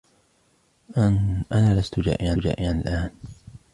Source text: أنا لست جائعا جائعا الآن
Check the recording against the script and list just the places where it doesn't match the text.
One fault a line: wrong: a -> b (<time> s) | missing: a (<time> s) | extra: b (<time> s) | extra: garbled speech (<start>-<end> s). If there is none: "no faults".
no faults